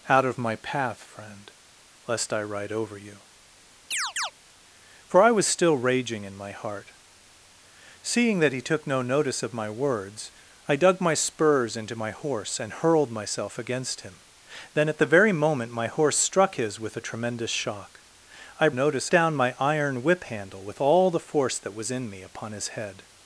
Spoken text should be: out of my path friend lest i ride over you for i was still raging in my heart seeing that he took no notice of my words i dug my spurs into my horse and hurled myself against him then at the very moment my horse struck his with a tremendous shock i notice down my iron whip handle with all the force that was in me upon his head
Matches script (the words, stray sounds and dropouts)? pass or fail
fail